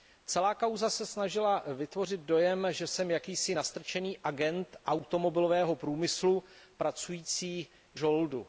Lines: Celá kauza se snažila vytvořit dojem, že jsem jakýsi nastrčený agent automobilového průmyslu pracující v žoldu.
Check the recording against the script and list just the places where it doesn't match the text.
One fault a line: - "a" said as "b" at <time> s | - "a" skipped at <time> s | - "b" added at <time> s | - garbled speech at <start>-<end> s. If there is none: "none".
none